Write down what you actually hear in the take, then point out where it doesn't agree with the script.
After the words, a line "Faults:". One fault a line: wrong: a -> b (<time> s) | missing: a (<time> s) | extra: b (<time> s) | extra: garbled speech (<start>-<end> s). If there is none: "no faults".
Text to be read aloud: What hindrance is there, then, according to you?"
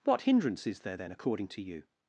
What hindrance is there, then, according to you?"
Faults:
no faults